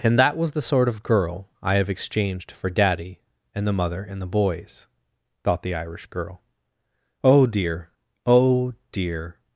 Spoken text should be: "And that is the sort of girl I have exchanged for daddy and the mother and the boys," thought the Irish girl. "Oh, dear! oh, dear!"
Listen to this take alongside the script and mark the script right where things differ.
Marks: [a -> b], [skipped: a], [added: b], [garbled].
"And that [is -> was] the sort of girl I have exchanged for daddy and the mother and the boys," thought the Irish girl. "Oh, dear! oh, dear!"